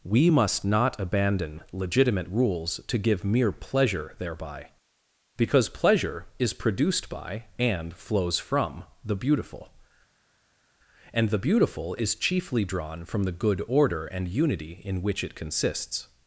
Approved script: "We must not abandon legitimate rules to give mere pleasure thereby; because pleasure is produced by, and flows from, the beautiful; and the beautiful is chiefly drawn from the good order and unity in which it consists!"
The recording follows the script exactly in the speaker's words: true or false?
true